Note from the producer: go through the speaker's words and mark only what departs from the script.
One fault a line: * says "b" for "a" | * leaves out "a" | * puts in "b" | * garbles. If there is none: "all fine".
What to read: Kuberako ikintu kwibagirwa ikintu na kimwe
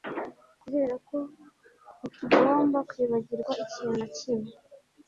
* says "ntitugomba" for "ikintu"